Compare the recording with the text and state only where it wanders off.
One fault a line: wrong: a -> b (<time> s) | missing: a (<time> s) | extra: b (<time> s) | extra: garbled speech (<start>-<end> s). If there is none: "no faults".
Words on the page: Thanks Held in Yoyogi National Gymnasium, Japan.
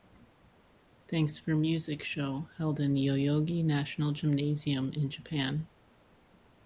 extra: For Music show (1.4 s)
extra: in (4.9 s)